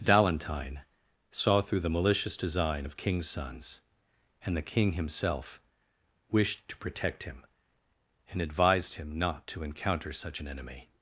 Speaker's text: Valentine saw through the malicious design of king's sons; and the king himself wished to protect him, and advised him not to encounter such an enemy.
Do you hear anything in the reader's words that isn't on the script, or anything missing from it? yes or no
no